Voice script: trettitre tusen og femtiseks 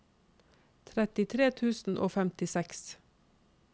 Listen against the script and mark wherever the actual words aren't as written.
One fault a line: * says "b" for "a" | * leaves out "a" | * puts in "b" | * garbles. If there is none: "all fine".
all fine